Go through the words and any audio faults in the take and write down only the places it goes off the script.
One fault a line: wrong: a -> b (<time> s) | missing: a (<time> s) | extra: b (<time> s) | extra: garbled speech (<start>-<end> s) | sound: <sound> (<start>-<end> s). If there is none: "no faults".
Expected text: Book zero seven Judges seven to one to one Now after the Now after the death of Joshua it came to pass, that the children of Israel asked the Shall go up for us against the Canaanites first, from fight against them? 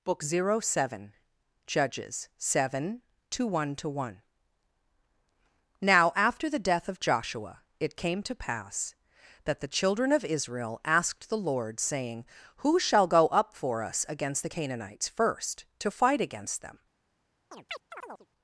missing: Now after the (6.7 s)
extra: LORD saying Who (11.4 s)
wrong: from -> to (15.8 s)
sound: chirp (17.5-18.3 s)